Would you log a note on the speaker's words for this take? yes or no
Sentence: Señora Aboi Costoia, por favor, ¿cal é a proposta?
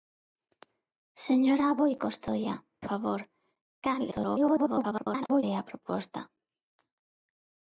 yes